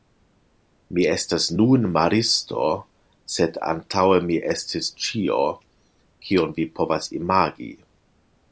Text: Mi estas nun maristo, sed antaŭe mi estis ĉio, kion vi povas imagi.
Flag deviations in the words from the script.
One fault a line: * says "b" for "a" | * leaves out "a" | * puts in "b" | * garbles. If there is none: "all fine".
all fine